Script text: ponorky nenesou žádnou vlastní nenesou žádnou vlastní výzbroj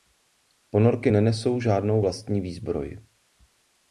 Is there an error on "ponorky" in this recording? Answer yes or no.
no